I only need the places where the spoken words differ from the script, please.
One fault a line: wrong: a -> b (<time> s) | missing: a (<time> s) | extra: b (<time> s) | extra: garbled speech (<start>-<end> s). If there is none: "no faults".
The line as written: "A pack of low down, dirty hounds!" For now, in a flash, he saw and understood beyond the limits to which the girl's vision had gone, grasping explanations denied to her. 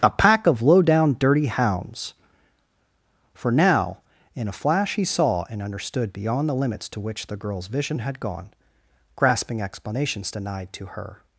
no faults